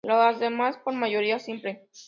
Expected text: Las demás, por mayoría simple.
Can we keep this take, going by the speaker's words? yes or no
yes